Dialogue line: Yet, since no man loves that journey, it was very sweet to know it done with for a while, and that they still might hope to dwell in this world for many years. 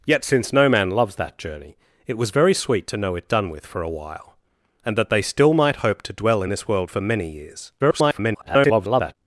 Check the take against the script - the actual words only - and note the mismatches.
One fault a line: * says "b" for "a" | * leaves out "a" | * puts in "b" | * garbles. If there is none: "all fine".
* garbles